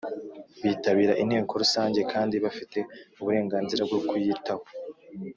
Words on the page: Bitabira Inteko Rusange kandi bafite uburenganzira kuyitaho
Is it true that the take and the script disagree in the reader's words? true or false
true